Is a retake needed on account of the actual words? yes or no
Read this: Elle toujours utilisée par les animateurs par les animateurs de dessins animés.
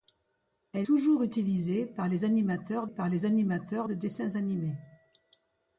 no